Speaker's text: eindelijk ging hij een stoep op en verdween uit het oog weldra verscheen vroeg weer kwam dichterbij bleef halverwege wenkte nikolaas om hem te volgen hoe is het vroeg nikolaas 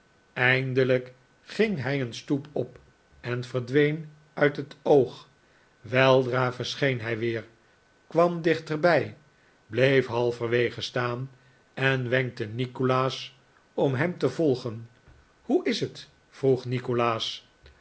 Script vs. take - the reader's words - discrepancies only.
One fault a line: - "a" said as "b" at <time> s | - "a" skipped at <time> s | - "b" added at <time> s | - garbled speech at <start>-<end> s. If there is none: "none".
- "vroeg" said as "hij" at 7.0 s
- "staan en" added at 10.8 s